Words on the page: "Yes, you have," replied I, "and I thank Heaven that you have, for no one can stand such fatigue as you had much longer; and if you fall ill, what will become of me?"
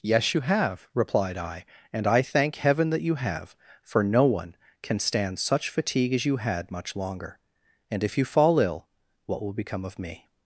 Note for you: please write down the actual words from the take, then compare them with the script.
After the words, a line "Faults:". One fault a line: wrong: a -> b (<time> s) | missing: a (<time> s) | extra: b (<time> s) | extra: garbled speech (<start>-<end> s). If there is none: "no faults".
"Yes, you have," replied I, "and I thank Heaven that you have, for no one can stand such fatigue as you had much longer; and if you fall ill, what will become of me?"
Faults:
no faults